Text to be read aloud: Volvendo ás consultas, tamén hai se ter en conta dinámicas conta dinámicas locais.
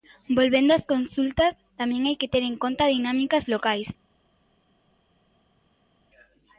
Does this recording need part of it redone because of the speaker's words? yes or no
yes